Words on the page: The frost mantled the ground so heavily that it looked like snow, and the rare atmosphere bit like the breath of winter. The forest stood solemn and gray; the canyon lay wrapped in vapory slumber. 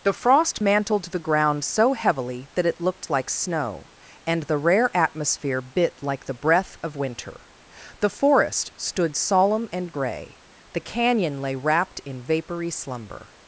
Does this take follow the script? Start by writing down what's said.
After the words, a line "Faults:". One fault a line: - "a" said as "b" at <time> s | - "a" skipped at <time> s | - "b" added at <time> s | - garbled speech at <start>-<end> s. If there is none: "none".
The frost mantled the ground so heavily that it looked like snow, and the rare atmosphere bit like the breath of winter. The forest stood solemn and gray; the canyon lay wrapped in vapory slumber.
Faults:
none